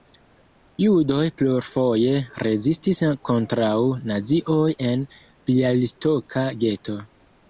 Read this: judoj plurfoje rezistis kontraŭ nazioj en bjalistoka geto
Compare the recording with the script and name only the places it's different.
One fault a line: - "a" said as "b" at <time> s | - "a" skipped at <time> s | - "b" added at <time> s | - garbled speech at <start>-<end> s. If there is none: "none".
none